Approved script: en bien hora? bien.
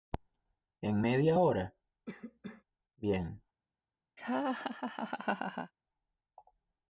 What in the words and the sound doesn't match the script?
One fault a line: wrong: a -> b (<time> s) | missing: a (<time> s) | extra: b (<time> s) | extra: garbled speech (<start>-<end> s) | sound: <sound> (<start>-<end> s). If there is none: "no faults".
wrong: bien -> media (1.0 s)
sound: cough (2.1-2.6 s)
sound: laugh (4.2-5.7 s)